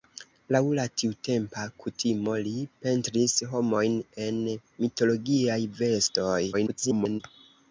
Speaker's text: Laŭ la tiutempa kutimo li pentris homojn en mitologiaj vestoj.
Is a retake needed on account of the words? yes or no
yes